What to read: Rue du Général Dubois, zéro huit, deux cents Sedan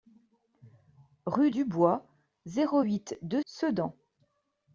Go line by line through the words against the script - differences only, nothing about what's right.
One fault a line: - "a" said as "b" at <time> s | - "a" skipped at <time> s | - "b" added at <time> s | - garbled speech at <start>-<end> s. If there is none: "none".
- "du Général" skipped at 1.5 s
- "cents" skipped at 3.4 s